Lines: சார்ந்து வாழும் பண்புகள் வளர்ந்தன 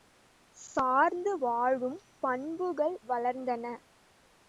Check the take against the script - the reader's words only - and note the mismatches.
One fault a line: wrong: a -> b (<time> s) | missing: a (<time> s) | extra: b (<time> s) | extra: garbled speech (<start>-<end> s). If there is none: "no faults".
no faults